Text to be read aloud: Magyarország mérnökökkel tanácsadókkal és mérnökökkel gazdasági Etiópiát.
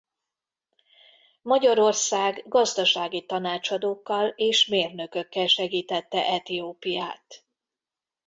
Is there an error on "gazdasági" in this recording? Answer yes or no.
yes